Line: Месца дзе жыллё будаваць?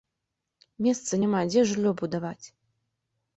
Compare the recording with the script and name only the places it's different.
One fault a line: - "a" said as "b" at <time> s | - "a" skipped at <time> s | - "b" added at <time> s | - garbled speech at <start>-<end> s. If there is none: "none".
- "няма" added at 1.2 s